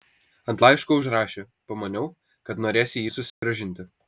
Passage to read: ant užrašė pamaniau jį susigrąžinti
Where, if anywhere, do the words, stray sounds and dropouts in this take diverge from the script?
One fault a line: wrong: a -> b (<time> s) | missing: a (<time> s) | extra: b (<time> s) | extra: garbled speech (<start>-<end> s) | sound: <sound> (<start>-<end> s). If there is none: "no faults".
extra: laiško (0.6 s)
extra: kad norėsi (2.5 s)
sound: dropout (3.3-3.4 s)